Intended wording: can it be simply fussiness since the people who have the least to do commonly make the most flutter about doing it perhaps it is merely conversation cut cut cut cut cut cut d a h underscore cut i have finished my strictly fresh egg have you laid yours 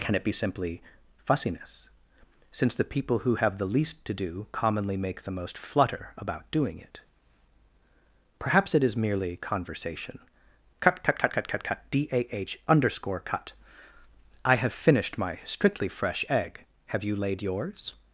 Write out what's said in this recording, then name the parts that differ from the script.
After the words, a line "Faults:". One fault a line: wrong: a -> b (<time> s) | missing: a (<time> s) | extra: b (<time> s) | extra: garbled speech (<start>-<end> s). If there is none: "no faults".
can it be simply fussiness since the people who have the least to do commonly make the most flutter about doing it perhaps it is merely conversation cut cut cut cut cut cut d a h underscore cut i have finished my strictly fresh egg have you laid yours
Faults:
no faults